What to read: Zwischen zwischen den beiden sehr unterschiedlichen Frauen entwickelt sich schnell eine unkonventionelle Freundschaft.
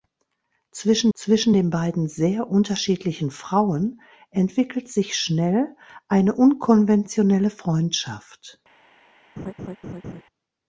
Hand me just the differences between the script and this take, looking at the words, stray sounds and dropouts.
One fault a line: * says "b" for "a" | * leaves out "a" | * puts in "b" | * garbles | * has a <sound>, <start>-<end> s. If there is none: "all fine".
* has a laugh, 9.4-10.2 s